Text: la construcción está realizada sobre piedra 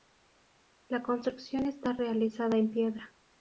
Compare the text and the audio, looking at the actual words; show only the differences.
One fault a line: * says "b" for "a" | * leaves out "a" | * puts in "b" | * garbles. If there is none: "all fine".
* says "en" for "sobre"